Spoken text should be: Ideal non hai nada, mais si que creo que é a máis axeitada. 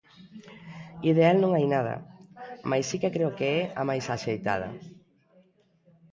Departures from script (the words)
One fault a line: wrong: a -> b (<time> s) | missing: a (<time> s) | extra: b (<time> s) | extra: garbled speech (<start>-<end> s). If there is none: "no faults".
no faults